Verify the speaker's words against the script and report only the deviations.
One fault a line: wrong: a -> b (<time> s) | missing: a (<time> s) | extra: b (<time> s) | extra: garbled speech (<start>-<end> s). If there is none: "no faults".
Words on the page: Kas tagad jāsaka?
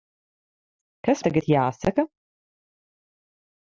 no faults